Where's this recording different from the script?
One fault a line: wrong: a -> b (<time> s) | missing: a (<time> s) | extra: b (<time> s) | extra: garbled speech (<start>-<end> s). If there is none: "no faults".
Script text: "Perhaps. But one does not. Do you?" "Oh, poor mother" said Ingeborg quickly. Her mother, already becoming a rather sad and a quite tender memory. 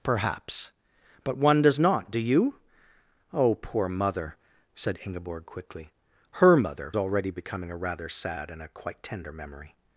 no faults